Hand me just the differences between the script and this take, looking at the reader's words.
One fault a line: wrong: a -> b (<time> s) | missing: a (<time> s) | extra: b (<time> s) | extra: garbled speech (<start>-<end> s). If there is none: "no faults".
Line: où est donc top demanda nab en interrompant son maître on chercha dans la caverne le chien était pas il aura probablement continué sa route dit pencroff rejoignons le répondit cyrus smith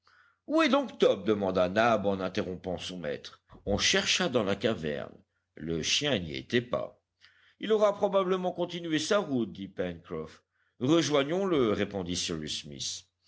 extra: n'y (6.2 s)